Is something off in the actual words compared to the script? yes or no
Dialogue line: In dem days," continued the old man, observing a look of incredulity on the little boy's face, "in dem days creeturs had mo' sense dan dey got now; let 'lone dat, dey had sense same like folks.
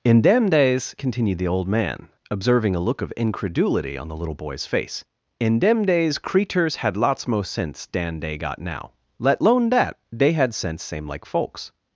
yes